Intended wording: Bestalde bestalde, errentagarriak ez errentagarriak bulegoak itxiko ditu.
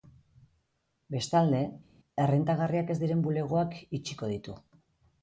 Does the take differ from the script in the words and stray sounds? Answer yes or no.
yes